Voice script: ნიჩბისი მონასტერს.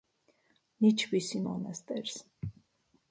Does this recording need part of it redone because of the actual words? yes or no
no